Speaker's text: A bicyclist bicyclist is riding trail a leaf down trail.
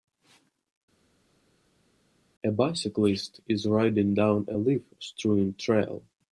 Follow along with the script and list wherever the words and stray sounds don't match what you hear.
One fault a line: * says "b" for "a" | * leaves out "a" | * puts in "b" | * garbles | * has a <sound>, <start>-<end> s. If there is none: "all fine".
* leaves out "bicyclist"
* says "down" for "trail"
* says "strewn" for "down"